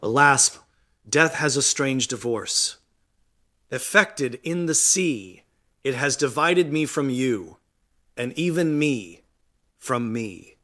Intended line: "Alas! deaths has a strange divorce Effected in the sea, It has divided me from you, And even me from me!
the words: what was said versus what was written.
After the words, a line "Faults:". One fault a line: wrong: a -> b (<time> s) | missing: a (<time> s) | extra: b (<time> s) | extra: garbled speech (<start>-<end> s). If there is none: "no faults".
"Alas! death has a strange divorce Effected in the sea, It has divided me from you, And even me from me!
Faults:
wrong: deaths -> death (1.1 s)